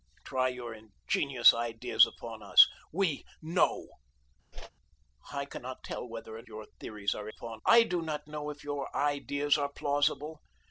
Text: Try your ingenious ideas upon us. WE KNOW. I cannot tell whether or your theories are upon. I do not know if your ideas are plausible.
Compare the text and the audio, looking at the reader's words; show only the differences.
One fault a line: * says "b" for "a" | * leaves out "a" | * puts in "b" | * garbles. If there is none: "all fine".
all fine